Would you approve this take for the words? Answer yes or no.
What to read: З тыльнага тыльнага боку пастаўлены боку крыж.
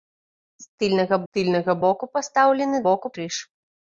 yes